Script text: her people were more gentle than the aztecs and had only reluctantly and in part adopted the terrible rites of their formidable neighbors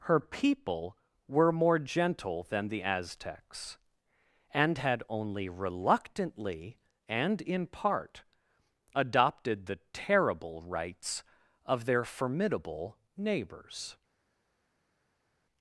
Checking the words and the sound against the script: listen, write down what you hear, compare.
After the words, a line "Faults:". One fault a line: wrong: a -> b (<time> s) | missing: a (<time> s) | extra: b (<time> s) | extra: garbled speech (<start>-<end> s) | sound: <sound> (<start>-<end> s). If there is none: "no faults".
her people were more gentle than the aztecs and had only reluctantly and in part adopted the terrible rites of their formidable neighbors
Faults:
no faults